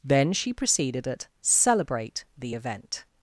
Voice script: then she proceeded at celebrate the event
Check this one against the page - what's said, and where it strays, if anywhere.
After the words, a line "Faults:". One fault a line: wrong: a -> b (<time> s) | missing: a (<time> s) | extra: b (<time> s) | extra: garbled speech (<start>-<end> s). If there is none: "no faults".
then she proceeded at celebrate the event
Faults:
no faults